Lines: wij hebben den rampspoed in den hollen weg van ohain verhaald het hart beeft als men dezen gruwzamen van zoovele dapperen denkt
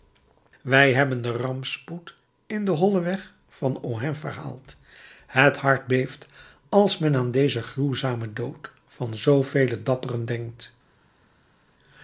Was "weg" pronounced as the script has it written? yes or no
yes